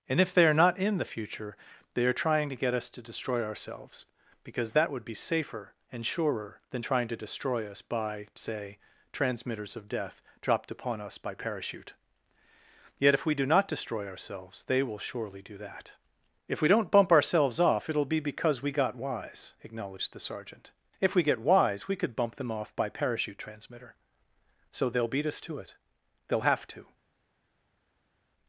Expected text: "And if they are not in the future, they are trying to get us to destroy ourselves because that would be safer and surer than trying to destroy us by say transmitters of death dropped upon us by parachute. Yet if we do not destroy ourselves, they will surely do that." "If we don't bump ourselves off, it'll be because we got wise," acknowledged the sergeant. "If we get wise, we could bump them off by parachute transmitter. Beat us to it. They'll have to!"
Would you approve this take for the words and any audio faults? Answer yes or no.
no